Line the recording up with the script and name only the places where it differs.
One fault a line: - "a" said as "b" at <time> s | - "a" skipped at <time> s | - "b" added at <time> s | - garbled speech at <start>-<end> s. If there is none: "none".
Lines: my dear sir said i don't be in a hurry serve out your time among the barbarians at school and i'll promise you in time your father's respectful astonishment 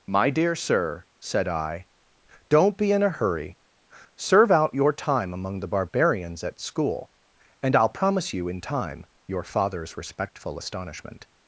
none